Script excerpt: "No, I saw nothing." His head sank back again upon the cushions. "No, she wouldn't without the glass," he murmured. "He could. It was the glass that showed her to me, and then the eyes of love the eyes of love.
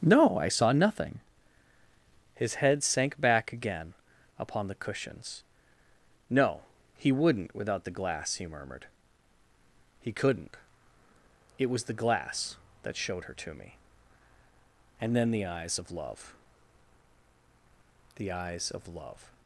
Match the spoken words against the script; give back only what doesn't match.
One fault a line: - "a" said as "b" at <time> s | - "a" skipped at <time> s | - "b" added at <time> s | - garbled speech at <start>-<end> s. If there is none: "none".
- "she" said as "he" at 6.9 s
- "could" said as "couldn't" at 10.1 s